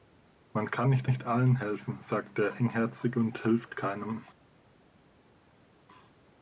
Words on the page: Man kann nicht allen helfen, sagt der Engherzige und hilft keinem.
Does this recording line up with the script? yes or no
no